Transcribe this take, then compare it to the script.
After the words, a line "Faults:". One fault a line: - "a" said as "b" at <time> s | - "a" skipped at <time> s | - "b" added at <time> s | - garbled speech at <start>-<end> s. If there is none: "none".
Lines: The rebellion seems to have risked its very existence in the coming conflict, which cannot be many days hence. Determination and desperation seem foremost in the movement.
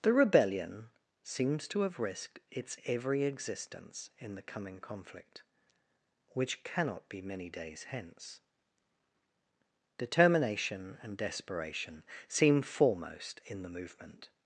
The rebellion seems to have risked its every existence in the coming conflict, which cannot be many days hence. Determination and desperation seem foremost in the movement.
Faults:
- "very" said as "every" at 2.9 s